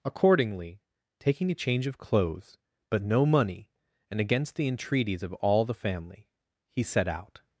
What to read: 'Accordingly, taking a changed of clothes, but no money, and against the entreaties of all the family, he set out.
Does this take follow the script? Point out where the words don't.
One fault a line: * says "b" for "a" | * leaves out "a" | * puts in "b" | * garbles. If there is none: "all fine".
* says "change" for "changed"